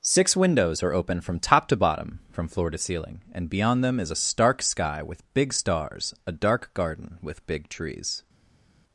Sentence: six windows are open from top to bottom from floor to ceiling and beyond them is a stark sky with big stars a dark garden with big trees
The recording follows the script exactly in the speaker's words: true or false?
true